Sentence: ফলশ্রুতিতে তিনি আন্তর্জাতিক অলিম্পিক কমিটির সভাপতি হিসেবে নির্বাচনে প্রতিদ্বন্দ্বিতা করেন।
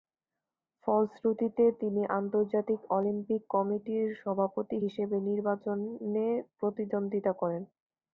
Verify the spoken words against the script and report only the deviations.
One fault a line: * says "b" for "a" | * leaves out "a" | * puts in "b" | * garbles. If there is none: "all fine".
all fine